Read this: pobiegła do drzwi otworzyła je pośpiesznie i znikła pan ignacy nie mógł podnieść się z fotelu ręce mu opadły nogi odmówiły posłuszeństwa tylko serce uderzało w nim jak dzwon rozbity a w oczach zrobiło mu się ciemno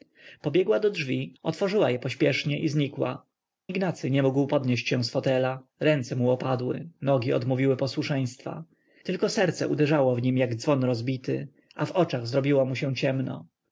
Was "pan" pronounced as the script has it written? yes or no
no